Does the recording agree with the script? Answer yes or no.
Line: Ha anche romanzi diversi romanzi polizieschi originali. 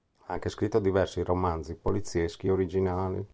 no